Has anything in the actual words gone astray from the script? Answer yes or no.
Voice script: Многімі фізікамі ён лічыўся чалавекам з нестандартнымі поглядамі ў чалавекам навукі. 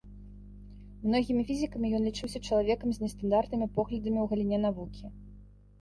yes